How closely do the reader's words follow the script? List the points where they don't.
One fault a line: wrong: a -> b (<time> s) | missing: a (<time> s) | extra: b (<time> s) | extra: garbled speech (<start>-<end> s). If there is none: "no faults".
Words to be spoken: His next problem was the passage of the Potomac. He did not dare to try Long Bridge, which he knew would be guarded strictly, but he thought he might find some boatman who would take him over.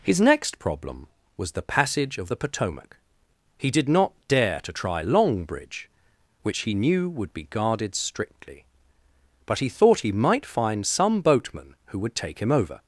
no faults